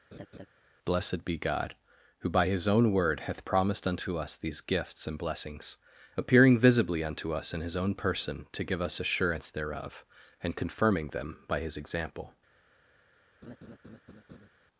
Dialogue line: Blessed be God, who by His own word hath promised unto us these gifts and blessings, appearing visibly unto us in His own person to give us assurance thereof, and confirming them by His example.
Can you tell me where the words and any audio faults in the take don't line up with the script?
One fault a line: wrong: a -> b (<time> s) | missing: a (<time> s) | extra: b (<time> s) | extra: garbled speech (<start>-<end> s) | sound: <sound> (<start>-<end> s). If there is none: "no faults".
sound: laugh (0.1-0.5 s)
sound: laugh (13.4-14.5 s)